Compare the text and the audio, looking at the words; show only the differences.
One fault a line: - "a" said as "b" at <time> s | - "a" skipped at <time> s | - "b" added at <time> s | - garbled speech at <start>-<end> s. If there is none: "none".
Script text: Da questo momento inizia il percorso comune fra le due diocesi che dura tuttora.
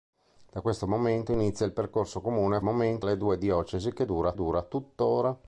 - "fra" said as "momento" at 2.6 s
- "dura" added at 4.3 s